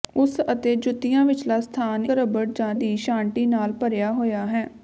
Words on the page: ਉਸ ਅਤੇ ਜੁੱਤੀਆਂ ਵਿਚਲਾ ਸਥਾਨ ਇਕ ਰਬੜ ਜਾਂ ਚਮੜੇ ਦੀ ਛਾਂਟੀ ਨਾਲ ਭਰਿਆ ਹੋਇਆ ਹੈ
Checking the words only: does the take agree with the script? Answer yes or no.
no